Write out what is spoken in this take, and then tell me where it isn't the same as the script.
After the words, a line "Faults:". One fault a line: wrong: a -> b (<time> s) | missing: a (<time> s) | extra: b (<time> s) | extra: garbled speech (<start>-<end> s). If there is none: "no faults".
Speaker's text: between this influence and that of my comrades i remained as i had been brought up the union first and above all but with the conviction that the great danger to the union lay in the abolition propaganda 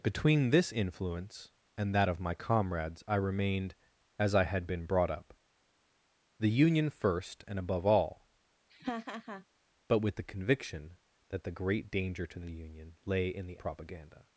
between this influence and that of my comrades i remained as i had been brought up the union first and above all but with the conviction that the great danger to the union lay in the propaganda
Faults:
missing: abolition (13.6 s)